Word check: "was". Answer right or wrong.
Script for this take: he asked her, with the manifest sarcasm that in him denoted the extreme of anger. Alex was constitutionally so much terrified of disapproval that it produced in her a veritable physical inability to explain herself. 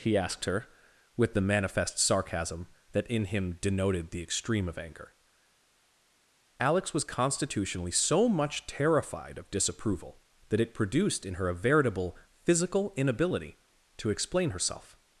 right